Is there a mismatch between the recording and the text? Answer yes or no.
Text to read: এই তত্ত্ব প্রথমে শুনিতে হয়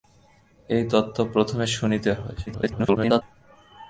yes